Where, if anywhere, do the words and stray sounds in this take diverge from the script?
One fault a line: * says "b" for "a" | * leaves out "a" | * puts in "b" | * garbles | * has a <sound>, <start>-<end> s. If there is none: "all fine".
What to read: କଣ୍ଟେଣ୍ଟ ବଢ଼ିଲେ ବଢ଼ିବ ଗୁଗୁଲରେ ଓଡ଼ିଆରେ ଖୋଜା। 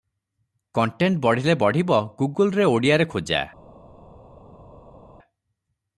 all fine